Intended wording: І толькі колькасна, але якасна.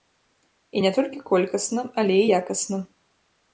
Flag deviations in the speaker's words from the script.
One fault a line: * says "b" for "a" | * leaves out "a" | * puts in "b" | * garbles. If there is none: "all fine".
* puts in "не"
* puts in "і"